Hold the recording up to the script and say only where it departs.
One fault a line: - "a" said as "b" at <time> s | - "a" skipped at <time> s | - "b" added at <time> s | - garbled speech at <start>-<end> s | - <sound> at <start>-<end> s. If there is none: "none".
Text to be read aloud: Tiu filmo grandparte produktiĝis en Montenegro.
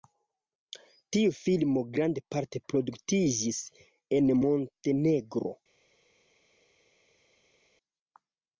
none